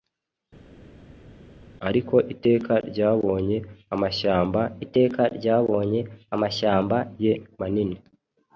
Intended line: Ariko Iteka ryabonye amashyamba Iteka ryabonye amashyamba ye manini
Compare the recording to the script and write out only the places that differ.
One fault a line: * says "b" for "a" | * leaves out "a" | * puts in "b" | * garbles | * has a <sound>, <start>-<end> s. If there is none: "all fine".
all fine